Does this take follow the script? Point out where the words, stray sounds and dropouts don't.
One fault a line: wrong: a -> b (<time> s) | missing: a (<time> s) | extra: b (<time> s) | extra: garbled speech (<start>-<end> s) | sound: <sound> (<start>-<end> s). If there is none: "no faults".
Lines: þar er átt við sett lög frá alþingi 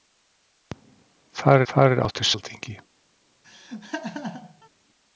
extra: þar (1.7 s)
missing: sett lög frá (2.3 s)
sound: laugh (3.4-4.7 s)